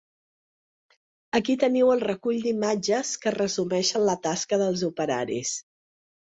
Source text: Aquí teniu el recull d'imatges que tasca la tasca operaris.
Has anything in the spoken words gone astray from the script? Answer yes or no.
yes